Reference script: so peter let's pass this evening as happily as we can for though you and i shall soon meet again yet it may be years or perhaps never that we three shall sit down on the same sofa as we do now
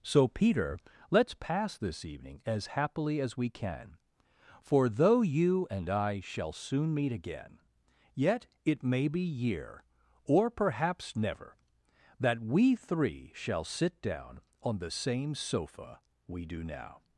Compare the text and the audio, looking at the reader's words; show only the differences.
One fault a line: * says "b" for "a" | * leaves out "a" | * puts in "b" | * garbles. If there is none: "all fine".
* says "year" for "years"
* leaves out "as"